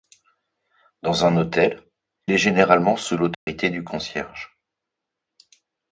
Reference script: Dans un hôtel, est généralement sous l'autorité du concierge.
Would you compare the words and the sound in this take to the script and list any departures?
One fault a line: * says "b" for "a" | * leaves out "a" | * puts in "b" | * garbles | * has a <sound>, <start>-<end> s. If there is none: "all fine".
* has a dropout, 3.3-3.5 s